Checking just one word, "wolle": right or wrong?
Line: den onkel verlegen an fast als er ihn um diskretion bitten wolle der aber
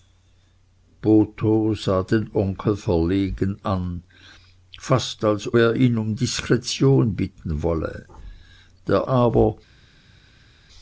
right